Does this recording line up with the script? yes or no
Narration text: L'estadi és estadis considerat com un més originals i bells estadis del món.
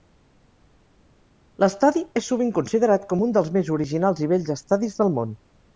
no